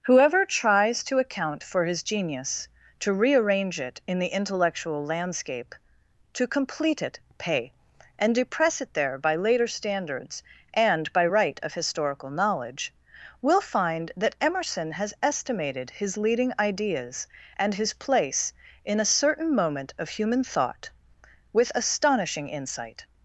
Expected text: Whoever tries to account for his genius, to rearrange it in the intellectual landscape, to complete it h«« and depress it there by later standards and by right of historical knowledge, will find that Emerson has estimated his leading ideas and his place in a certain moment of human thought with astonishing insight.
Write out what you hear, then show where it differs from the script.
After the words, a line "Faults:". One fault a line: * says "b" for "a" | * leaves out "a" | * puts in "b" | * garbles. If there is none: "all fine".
Whoever tries to account for his genius, to rearrange it in the intellectual landscape, to complete it pay«« and depress it there by later standards and by right of historical knowledge, will find that Emerson has estimated his leading ideas and his place in a certain moment of human thought with astonishing insight.
Faults:
* says "pay" for "h"